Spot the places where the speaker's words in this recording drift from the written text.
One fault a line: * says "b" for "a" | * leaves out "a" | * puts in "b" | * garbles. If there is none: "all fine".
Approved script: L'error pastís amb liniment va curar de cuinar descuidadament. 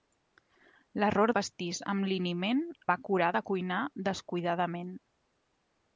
all fine